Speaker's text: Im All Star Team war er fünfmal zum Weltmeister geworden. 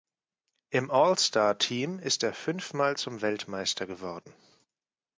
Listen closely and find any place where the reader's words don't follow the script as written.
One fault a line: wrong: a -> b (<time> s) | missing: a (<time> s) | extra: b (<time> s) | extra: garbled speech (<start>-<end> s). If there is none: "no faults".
wrong: war -> ist (2.0 s)